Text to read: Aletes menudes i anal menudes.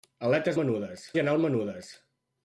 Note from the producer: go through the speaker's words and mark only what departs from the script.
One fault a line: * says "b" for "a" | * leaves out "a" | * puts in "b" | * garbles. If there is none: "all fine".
all fine